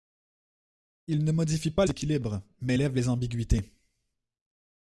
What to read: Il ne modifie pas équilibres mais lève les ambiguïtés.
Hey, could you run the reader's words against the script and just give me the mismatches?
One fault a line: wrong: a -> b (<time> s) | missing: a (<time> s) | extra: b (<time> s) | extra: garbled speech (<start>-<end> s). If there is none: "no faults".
no faults